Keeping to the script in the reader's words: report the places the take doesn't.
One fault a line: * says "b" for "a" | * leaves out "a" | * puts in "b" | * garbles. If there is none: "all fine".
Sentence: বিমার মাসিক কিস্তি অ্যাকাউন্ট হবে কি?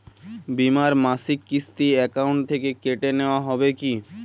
* puts in "থেকে কেটে নেওয়া"